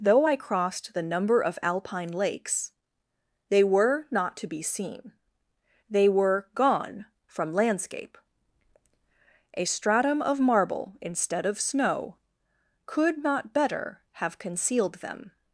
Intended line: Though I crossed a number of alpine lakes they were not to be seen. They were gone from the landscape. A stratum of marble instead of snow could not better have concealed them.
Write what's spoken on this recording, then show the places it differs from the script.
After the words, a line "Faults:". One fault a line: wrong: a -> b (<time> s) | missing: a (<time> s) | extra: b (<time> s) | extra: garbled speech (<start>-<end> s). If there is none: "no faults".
Though I crossed the number of alpine lakes they were not to be seen. They were gone from landscape. A stratum of marble instead of snow could not better have concealed them.
Faults:
wrong: a -> the (0.9 s)
missing: the (7.5 s)